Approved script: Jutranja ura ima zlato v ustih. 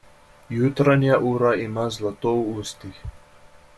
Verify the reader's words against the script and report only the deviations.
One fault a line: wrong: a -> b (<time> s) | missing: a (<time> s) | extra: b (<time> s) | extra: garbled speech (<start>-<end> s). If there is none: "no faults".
no faults